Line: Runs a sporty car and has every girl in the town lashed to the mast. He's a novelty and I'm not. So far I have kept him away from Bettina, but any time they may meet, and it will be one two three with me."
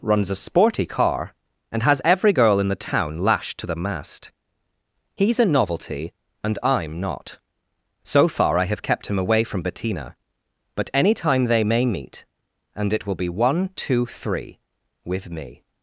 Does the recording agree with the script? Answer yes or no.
yes